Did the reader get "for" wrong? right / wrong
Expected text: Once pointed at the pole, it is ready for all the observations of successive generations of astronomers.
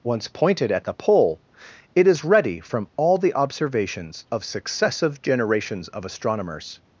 wrong